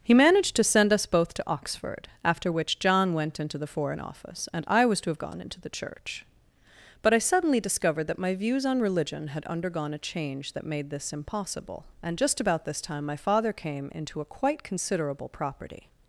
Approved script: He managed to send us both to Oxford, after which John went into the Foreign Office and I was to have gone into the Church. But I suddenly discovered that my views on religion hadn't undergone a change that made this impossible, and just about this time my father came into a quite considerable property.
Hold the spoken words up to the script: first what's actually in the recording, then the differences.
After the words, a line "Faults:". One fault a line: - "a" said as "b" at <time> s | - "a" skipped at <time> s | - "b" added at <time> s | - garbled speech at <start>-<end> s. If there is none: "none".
He managed to send us both to Oxford, after which John went into the Foreign Office and I was to have gone into the Church. But I suddenly discovered that my views on religion had undergone a change that made this impossible, and just about this time my father came into a quite considerable property.
Faults:
- "hadn't" said as "had" at 9.3 s